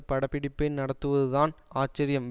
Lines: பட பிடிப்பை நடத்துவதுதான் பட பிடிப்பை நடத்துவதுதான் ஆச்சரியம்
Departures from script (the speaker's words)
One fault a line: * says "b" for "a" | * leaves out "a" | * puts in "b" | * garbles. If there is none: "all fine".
* leaves out "பட பிடிப்பை நடத்துவதுதான்"